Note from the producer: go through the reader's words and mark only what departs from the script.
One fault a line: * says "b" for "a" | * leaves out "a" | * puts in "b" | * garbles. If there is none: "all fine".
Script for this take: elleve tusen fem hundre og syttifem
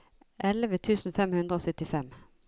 all fine